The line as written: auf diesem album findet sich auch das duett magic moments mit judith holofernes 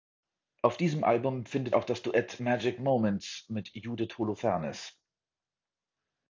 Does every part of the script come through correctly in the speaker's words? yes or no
no